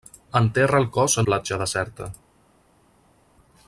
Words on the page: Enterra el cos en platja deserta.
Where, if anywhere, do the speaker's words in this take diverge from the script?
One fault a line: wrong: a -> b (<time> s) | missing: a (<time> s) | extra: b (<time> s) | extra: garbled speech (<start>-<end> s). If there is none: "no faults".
no faults